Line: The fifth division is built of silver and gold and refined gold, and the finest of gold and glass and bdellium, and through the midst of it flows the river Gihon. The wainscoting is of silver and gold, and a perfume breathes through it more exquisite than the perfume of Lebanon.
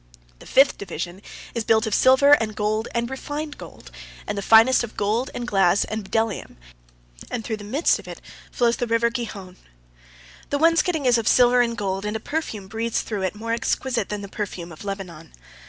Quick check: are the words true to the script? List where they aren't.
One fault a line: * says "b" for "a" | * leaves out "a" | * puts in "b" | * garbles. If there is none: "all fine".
all fine